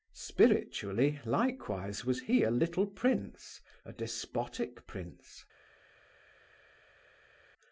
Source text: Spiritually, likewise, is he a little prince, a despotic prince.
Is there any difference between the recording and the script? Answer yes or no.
yes